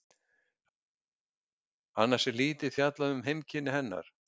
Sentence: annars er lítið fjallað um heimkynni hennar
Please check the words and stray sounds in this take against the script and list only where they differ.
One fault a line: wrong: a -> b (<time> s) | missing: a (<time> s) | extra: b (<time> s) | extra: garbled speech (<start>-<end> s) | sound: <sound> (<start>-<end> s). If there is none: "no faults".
no faults